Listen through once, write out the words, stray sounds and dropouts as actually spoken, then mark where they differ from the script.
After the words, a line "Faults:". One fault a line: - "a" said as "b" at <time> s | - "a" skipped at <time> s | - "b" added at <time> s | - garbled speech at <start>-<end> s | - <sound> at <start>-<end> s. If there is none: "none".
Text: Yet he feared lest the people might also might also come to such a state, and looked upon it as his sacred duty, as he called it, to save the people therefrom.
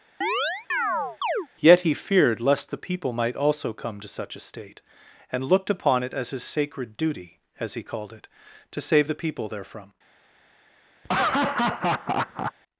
Yet he feared lest the people might also come to such a state, and looked upon it as his sacred duty, as he called it, to save the people therefrom.
Faults:
- chirp at 0.2-1.5 s
- "might also" skipped at 3.7 s
- laugh at 11.0-12.5 s